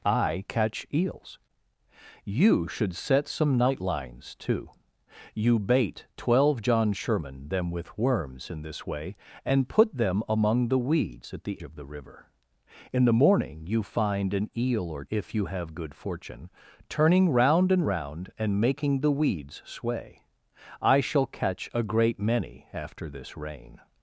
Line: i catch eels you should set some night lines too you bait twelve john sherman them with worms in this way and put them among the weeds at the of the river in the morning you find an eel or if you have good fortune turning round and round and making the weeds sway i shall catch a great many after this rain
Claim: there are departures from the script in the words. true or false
false